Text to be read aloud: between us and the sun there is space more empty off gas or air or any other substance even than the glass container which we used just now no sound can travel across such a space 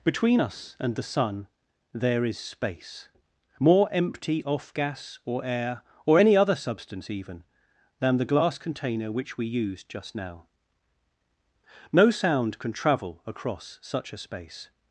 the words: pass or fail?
pass